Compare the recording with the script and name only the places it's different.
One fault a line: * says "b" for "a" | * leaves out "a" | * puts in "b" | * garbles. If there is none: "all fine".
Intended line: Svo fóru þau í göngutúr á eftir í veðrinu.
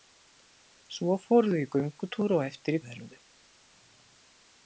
all fine